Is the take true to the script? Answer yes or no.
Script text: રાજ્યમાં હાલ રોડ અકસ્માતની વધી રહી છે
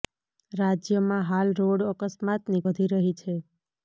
yes